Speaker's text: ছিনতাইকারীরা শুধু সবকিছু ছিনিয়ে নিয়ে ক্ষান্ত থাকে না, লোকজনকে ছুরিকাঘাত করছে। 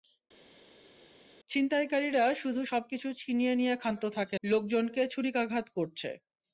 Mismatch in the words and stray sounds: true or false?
true